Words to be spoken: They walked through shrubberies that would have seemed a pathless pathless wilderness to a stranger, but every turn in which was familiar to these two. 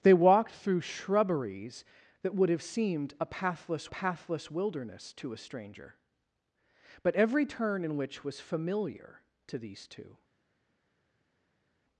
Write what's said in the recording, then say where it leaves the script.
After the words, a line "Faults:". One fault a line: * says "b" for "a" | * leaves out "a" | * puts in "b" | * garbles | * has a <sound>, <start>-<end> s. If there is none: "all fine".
They walked through shrubberies that would have seemed a pathless pathless wilderness to a stranger, but every turn in which was familiar to these two.
Faults:
all fine